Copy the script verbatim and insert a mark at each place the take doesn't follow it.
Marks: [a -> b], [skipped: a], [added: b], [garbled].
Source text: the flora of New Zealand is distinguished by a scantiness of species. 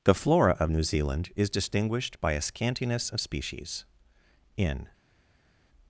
the flora of New Zealand is distinguished by a scantiness of species. [added: In]